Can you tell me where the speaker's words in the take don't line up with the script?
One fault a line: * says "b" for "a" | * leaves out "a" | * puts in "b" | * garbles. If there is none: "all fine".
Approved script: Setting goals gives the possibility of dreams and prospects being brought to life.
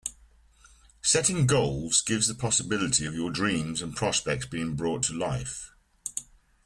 * puts in "your"